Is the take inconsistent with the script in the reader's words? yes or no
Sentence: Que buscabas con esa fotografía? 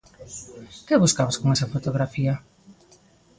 no